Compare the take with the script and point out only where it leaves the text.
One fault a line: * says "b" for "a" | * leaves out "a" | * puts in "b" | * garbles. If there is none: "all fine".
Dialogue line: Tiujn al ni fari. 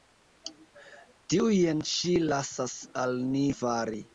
* puts in "ŝi lasas"